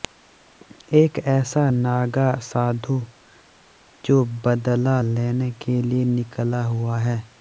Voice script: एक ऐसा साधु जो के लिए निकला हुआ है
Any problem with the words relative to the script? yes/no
yes